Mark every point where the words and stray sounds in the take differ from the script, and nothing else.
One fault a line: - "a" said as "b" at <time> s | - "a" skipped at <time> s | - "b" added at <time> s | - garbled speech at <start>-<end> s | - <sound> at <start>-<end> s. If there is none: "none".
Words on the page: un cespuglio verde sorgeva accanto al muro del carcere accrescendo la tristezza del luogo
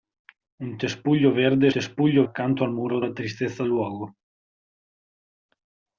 - "sorgeva" said as "cespuglio" at 1.7 s
- "del carcere accrescendo" skipped at 3.0 s
- "del" skipped at 3.6 s